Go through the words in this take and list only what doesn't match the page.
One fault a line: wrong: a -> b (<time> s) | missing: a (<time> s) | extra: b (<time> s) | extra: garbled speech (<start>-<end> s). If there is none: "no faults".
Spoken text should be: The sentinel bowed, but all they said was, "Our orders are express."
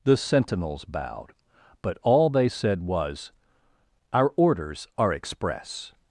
wrong: sentinel -> sentinels (0.2 s)